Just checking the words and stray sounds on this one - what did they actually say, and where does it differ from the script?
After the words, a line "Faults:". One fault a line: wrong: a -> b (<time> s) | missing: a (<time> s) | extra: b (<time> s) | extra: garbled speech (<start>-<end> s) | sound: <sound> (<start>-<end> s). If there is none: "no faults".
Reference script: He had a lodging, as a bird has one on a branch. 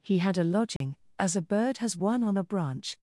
He had a lodging, as a bird has one on a branch.
Faults:
sound: dropout (0.8-0.8 s)